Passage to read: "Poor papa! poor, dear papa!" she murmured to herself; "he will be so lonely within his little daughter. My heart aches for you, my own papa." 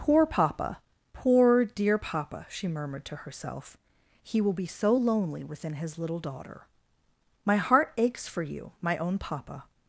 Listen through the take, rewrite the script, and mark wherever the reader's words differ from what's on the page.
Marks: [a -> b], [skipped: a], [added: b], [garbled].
"Poor papa! poor, dear papa!" she murmured to herself; "he will be so lonely within his little daughter. My heart aches for you, my own papa."